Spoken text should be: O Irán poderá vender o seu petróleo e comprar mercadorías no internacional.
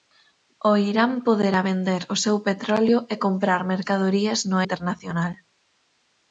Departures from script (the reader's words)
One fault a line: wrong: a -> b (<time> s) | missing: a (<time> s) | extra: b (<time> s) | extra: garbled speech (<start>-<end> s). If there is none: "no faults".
no faults